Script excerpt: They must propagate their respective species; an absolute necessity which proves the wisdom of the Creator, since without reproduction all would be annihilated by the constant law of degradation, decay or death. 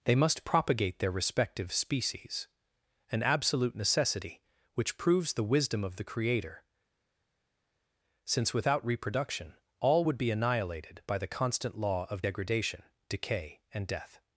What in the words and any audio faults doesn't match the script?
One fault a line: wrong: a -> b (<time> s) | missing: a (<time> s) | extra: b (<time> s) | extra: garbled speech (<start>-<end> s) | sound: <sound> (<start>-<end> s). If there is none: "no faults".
wrong: or -> and (13.7 s)